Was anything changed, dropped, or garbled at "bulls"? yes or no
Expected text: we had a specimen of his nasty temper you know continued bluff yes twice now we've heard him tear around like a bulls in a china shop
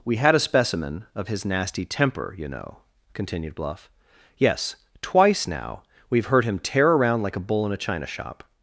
yes